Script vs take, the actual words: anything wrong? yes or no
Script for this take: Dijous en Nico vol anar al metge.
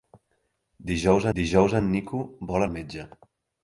yes